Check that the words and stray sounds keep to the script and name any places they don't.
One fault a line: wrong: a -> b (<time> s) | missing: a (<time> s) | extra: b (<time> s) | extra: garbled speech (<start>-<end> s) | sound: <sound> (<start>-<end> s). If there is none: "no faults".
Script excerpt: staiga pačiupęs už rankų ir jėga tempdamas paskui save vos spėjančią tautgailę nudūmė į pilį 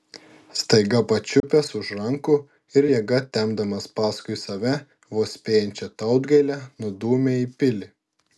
sound: dropout (1.4-1.4 s)